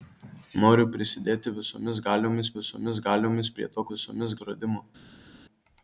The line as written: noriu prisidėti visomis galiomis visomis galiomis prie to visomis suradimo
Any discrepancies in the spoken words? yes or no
no